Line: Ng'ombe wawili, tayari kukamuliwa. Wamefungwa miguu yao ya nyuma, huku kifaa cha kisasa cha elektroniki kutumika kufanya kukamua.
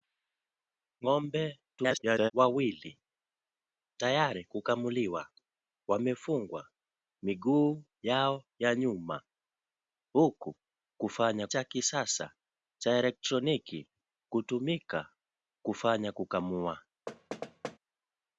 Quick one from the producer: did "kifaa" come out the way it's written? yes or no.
no